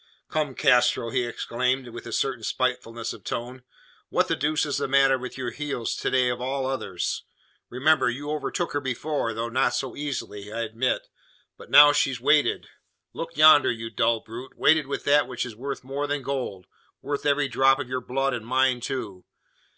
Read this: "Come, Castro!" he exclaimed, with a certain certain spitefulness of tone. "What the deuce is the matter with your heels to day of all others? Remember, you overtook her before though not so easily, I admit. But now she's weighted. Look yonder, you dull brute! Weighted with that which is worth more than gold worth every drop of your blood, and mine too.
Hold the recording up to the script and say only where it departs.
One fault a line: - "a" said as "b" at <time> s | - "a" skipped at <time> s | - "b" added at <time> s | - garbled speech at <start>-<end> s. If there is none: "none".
- "certain" skipped at 2.4 s